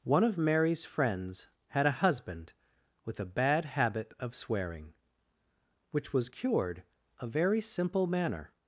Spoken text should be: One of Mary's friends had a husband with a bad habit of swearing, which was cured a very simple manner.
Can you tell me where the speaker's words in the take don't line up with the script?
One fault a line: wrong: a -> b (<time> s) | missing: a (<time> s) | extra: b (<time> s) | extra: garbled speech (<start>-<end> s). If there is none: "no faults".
no faults